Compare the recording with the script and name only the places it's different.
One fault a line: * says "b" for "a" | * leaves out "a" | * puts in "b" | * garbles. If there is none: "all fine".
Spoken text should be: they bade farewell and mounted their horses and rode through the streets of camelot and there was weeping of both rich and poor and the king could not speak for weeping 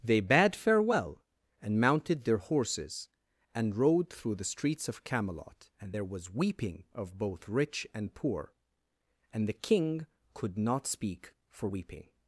all fine